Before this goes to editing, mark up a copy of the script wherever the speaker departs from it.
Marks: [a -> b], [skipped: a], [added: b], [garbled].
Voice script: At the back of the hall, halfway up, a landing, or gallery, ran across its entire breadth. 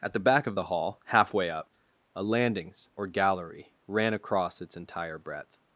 At the back of the hall, halfway up, a [landing, -> landings] or gallery, ran across its entire breadth.